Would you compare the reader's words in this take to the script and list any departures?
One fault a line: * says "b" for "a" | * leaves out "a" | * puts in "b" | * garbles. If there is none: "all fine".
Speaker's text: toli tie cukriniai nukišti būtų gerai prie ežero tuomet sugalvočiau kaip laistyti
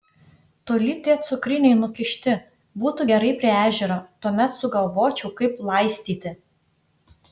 all fine